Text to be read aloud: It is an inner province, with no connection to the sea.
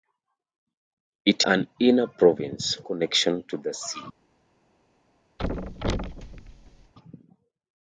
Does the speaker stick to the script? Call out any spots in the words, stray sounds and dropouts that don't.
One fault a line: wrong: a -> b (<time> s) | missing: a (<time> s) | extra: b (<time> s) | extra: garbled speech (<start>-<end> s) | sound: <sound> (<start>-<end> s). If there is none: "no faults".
missing: is (1.4 s)
missing: with no (2.8 s)
sound: thud (5.4-6.9 s)